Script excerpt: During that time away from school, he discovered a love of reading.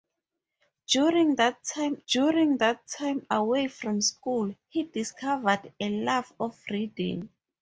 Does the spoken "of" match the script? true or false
true